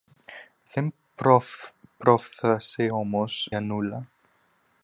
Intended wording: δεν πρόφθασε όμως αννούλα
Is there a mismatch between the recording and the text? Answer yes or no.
no